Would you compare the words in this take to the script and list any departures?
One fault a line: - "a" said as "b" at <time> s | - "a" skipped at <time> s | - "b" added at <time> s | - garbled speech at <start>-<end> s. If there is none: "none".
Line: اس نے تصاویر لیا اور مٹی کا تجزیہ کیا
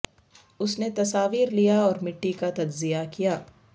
none